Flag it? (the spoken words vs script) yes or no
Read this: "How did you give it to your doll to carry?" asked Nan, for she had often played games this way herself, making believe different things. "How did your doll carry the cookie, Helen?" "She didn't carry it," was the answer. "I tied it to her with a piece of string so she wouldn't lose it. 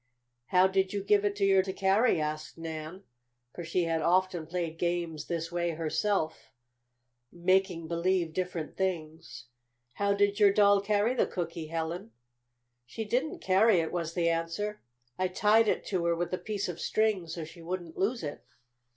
yes